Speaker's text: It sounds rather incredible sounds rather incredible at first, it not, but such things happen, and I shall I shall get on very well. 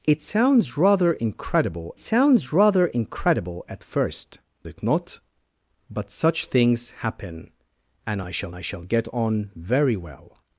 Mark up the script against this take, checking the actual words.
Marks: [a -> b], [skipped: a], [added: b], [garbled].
It sounds rather incredible sounds rather incredible at first, it not, but such things happen, and I shall I shall get on very well.